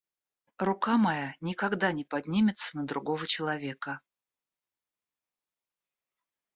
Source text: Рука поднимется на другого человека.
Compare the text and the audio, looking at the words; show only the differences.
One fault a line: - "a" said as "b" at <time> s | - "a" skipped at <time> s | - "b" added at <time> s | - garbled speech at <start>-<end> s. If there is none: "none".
- "моя никогда не" added at 1.0 s